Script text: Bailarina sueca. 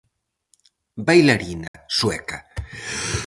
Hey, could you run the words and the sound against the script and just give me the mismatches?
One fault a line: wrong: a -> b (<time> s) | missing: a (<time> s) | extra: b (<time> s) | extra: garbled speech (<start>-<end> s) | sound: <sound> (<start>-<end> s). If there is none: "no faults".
sound: dropout (1.7-1.7 s)